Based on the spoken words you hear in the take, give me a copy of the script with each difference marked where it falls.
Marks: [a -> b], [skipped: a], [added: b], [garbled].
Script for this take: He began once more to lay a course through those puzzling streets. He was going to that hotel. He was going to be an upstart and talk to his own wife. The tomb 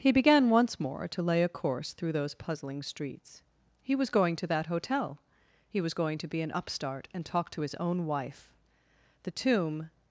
He began once more to lay a course through those puzzling streets. He was going to that hotel. He was going to be an upstart and talk to his own wife. The tomb